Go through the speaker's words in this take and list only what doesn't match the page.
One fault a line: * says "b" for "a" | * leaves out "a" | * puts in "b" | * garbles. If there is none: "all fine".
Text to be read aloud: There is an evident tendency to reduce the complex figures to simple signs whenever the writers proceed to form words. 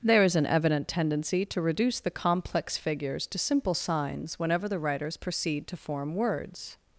all fine